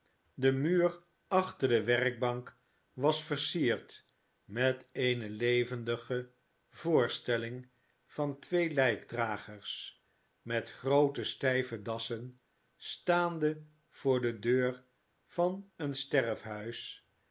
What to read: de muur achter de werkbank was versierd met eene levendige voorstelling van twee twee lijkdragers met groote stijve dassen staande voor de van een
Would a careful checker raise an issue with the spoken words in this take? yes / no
yes